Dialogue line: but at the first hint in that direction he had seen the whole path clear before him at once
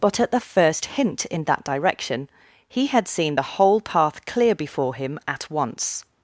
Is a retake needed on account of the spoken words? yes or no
no